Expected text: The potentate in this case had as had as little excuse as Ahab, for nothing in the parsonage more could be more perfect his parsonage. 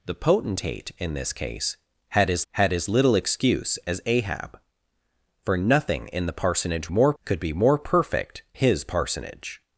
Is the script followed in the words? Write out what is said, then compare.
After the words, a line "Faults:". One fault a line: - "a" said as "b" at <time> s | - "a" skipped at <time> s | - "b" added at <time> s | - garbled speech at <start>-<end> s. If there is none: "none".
The potentate in this case had as had as little excuse as Ahab, for nothing in the parsonage more could be more perfect his parsonage.
Faults:
none